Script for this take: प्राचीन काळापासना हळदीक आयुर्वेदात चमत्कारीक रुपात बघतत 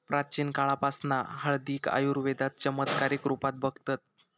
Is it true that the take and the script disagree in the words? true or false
false